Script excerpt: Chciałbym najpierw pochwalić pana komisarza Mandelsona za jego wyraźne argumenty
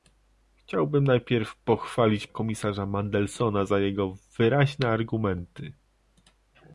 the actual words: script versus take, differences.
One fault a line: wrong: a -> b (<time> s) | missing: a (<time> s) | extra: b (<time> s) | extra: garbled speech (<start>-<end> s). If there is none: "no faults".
missing: pana (2.3 s)